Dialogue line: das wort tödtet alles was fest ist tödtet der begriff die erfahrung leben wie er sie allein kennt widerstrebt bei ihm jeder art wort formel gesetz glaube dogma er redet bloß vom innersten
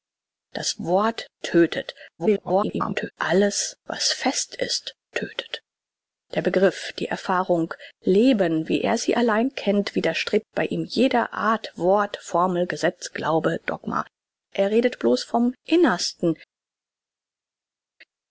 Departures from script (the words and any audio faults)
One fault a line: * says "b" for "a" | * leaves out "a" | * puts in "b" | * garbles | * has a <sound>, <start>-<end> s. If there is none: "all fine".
* garbles